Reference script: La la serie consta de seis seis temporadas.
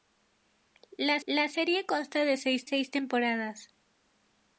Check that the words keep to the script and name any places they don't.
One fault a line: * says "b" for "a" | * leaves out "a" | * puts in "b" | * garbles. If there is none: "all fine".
all fine